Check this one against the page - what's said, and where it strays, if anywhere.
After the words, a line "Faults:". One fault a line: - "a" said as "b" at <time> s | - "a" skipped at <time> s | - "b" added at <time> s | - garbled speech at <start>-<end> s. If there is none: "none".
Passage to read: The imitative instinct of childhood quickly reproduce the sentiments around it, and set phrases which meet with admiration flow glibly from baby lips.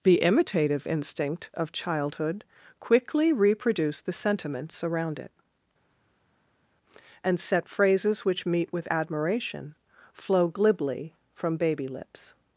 The imitative instinct of childhood quickly reproduce the sentiments around it, and set phrases which meet with admiration flow glibly from baby lips.
Faults:
none